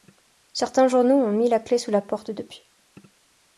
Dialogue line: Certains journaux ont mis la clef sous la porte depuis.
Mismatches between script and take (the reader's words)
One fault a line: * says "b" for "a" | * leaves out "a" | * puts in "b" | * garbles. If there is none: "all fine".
all fine